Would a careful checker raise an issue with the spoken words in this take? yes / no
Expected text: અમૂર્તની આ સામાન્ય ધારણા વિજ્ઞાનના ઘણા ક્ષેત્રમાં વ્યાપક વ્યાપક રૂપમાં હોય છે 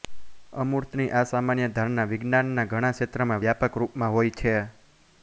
yes